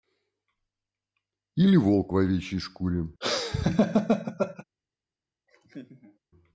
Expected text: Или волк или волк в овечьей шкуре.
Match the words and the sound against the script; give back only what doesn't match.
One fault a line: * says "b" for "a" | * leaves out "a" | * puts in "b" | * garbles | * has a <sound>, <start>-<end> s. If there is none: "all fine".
* leaves out "или волк"
* has a laugh, 3.2-4.6 s
* has a laugh, 5.5-6.2 s